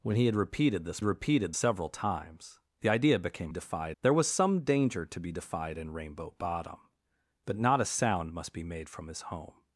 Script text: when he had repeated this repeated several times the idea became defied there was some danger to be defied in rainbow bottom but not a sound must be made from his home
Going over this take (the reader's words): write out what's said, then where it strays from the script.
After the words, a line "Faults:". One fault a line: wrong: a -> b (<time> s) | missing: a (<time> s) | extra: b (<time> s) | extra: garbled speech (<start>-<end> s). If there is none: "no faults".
when he had repeated this repeated several times the idea became defied there was some danger to be defied in rainbow bottom but not a sound must be made from his home
Faults:
no faults